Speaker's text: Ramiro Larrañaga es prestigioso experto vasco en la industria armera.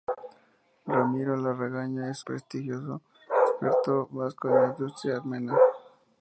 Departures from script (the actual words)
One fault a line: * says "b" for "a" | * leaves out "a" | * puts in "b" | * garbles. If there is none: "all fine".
all fine